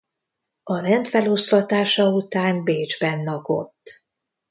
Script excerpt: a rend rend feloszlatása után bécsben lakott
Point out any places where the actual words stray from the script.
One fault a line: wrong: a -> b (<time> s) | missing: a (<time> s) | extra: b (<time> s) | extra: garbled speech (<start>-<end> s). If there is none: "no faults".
missing: rend (1.1 s)